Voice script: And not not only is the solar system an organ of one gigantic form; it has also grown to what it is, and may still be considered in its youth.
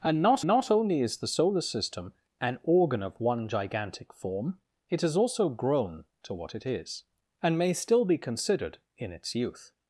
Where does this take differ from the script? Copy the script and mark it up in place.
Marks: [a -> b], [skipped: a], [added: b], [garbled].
And not not only is the solar system an organ of one gigantic form; it has also grown to what it is, and may still be considered in its youth.